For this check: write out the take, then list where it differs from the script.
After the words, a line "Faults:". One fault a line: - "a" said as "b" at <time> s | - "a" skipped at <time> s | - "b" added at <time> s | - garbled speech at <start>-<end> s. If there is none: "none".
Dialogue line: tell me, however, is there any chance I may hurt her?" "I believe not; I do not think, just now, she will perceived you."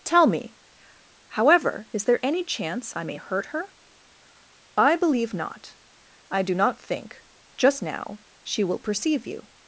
tell me, however, is there any chance I may hurt her?" "I believe not; I do not think, just now, she will perceive you."
Faults:
- "perceived" said as "perceive" at 8.8 s